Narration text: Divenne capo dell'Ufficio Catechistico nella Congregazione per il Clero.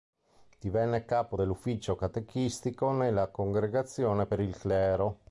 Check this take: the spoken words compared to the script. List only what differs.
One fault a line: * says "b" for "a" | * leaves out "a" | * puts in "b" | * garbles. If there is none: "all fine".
all fine